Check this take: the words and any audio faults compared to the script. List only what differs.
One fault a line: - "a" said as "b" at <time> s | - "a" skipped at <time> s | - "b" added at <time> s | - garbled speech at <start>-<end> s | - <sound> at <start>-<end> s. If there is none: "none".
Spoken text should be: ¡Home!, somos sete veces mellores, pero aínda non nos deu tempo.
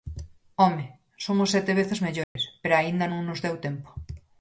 - dropout at 2.2-2.4 s